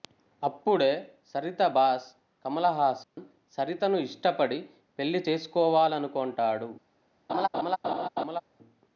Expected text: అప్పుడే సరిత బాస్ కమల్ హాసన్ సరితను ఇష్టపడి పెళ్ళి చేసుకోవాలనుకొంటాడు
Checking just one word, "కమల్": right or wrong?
right